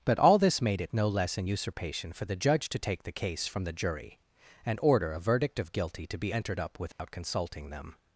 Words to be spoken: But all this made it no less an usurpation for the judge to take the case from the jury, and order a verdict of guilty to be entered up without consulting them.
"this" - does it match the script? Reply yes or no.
yes